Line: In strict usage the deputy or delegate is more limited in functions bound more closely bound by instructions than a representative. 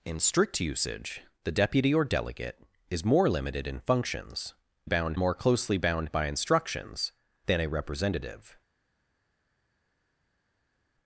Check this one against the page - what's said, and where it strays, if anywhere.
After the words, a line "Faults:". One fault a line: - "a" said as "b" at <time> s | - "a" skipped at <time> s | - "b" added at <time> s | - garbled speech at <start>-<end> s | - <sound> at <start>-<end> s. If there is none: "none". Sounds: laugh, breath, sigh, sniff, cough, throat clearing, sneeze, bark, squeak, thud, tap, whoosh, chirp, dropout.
In strict usage the deputy or delegate is more limited in functions bound more closely bound by instructions than a representative.
Faults:
none